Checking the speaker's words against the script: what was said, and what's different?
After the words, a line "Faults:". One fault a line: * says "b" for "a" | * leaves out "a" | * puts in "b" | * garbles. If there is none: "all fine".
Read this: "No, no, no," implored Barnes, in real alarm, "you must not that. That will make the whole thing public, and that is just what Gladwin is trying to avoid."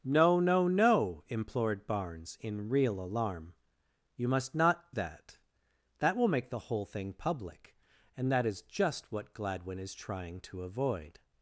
"No, no, no," implored Barnes, in real alarm, "you must not that. That will make the whole thing public, and that is just what Gladwin is trying to avoid."
Faults:
all fine